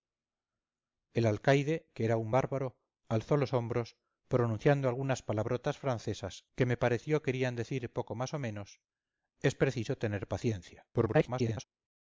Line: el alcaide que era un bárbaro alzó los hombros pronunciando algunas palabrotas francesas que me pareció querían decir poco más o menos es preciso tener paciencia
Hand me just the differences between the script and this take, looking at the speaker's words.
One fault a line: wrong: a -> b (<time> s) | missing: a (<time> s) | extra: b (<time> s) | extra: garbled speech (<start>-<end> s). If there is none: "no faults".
extra: garbled speech (10.9-11.6 s)